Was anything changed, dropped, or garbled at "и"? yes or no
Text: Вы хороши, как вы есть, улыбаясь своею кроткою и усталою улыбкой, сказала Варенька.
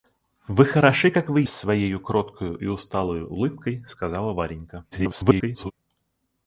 no